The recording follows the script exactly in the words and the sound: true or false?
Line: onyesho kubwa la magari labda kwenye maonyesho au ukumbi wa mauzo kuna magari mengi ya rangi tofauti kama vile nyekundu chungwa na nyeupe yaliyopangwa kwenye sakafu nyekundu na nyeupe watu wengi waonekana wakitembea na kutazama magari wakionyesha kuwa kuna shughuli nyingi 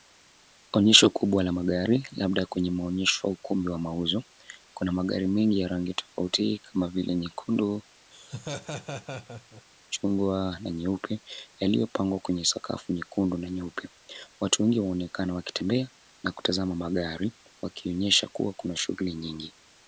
false